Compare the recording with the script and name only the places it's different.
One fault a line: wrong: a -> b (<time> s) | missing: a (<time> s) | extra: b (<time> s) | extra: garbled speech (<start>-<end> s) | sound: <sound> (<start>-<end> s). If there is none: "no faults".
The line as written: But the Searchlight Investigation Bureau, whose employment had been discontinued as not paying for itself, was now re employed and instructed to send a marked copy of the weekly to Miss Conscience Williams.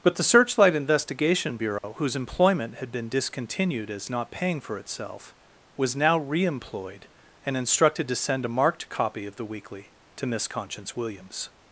sound: dropout (1.8-1.8 s)